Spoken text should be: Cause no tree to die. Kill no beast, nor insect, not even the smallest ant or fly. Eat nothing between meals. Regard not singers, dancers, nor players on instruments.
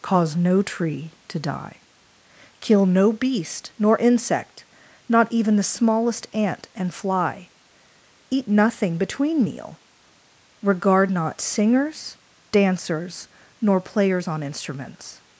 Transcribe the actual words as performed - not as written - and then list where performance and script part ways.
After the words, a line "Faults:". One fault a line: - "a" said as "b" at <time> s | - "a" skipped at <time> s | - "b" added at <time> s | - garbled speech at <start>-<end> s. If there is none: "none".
Cause no tree to die. Kill no beast, nor insect, not even the smallest ant and fly. Eat nothing between meal. Regard not singers, dancers, nor players on instruments.
Faults:
- "or" said as "and" at 6.8 s
- "meals" said as "meal" at 9.4 s